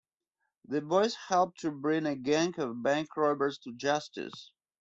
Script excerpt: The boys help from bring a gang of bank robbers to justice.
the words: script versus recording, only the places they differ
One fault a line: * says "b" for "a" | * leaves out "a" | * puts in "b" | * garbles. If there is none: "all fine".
* says "to" for "from"